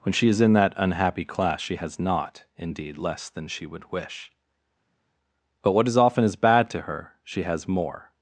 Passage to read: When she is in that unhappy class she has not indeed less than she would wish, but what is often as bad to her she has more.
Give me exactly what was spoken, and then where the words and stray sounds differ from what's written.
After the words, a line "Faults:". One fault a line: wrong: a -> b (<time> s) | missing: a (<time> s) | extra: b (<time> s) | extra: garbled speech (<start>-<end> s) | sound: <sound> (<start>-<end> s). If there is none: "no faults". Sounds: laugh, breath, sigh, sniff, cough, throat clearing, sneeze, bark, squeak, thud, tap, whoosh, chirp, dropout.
When she is in that unhappy class she has not indeed less than she would wish, but what is often as bad to her she has more.
Faults:
no faults